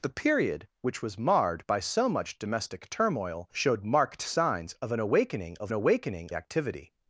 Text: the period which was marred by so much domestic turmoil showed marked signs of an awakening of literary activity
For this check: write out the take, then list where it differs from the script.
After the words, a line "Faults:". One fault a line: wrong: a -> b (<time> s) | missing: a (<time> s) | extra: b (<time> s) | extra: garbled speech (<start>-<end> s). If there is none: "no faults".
the period which was marred by so much domestic turmoil showed marked signs of an awakening of awakening activity
Faults:
wrong: literary -> awakening (5.7 s)